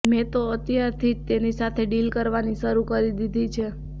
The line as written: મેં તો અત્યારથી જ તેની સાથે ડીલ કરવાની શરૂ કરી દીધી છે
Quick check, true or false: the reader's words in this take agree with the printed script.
true